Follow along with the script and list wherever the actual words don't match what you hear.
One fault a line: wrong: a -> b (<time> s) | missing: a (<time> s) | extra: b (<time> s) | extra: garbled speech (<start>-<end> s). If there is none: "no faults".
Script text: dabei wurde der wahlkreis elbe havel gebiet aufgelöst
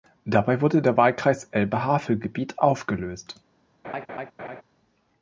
no faults